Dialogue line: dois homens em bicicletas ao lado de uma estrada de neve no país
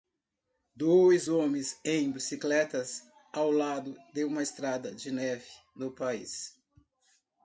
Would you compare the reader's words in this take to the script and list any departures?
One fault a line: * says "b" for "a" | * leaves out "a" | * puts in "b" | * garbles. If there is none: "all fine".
all fine